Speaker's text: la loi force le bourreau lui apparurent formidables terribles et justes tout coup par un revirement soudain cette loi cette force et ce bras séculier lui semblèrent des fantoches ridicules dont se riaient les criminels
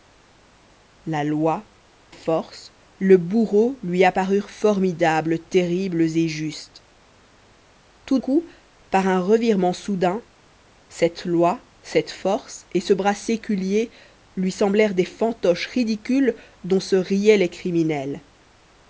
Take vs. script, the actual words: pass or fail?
pass